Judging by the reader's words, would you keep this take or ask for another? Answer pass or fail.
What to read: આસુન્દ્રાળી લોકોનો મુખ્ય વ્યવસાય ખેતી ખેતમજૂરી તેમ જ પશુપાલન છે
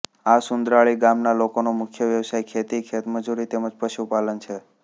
fail